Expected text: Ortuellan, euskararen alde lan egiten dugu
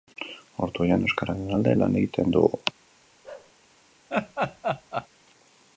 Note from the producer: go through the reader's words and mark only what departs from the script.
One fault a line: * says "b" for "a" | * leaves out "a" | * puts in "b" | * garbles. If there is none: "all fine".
all fine